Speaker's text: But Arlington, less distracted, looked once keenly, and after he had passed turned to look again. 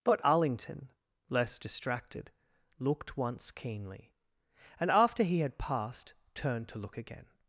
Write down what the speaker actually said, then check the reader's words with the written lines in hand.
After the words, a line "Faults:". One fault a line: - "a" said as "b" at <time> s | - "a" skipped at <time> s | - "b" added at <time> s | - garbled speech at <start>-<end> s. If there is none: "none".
But Arlington, less distracted, looked once keenly, and after he had passed turned to look again.
Faults:
none